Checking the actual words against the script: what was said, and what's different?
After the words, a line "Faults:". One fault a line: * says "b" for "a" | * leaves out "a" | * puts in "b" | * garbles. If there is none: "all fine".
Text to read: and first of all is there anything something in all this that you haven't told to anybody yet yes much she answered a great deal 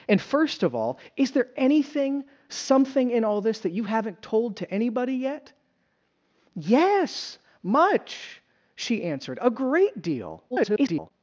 and first of all is there anything something in all this that you haven't told to anybody yet yes much she answered a great deal [garbled]
Faults:
* garbles